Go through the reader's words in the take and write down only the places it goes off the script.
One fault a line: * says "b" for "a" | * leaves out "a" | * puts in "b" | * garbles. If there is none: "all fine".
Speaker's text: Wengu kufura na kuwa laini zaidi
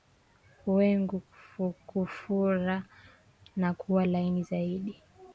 all fine